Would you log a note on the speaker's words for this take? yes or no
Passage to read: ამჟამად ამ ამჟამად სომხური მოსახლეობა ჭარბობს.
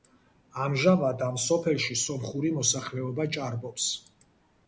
yes